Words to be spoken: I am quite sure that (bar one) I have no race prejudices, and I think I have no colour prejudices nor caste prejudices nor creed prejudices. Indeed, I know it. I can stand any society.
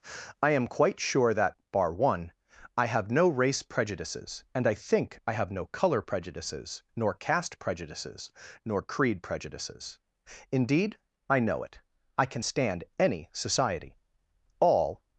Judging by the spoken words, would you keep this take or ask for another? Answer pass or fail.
fail